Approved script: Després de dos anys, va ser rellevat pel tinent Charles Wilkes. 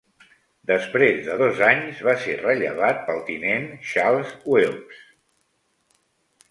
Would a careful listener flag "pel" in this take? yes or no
no